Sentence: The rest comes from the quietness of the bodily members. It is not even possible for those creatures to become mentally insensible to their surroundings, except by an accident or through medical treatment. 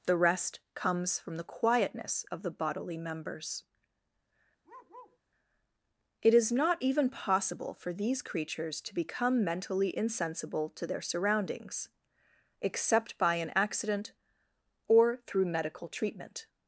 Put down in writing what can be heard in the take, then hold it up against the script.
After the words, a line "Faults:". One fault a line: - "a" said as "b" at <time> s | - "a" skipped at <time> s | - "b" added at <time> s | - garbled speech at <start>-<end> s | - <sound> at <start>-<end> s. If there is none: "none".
The rest comes from the quietness of the bodily members. It is not even possible for these creatures to become mentally insensible to their surroundings, except by an accident or through medical treatment.
Faults:
- bark at 4.6-5.2 s
- "those" said as "these" at 7.9 s